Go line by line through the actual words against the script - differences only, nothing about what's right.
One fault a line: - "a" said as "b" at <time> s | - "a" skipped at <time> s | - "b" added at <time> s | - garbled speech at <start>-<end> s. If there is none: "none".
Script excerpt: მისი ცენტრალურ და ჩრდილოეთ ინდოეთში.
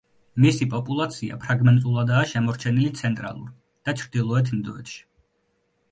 - "პოპულაცია ფრაგმენტულადაა შემორჩენილი" added at 0.7 s